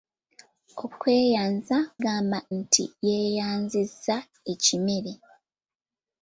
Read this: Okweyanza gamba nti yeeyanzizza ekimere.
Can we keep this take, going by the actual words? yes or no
yes